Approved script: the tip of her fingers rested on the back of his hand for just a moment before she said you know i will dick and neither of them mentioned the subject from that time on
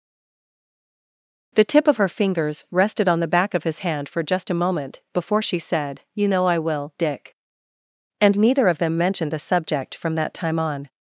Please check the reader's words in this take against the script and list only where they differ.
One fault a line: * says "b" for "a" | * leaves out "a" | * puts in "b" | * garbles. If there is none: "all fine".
all fine